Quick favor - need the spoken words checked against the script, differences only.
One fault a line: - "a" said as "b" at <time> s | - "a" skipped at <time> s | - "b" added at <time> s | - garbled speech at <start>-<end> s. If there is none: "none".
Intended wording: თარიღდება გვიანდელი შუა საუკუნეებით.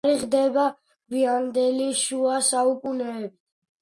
none